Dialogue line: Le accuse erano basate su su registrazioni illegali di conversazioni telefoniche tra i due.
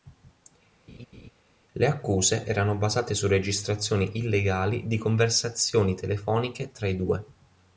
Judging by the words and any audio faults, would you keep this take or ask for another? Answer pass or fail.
fail